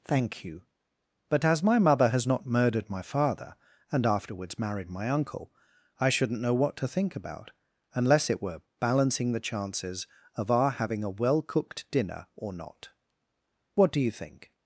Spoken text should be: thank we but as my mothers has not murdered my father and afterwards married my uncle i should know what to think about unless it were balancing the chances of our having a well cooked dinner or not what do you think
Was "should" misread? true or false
true